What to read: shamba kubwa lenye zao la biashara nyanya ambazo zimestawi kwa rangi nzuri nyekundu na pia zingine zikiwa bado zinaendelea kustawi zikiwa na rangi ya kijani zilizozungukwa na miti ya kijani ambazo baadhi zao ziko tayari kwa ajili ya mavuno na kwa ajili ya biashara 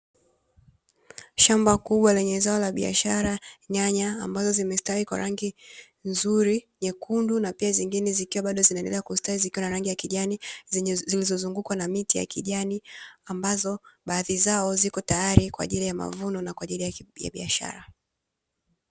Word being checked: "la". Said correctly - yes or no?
yes